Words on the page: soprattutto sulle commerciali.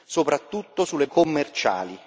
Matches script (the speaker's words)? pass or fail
pass